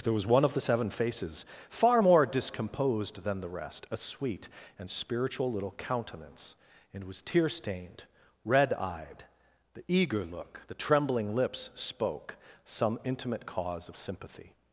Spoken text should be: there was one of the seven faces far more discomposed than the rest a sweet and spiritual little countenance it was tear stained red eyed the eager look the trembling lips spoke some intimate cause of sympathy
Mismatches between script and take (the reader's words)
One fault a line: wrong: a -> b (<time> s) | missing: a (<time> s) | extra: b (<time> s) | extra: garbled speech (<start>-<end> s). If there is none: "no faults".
wrong: it -> and (6.9 s)